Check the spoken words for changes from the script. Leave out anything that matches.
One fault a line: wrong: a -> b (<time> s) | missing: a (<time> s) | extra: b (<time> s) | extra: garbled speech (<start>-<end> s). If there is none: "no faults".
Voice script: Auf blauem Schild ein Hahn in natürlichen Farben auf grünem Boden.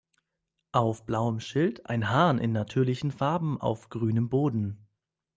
no faults